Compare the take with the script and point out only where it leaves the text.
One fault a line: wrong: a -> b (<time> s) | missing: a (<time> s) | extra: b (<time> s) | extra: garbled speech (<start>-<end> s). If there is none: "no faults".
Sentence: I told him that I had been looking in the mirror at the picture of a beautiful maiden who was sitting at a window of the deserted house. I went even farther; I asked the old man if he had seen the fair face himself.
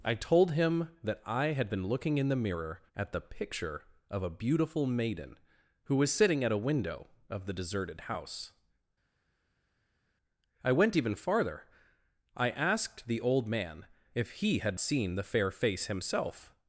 no faults